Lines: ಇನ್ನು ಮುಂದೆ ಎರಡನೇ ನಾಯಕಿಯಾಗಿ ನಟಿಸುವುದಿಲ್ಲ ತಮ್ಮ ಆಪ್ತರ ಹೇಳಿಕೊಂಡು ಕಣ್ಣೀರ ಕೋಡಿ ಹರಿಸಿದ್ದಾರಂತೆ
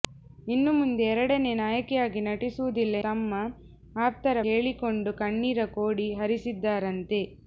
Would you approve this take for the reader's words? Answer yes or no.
yes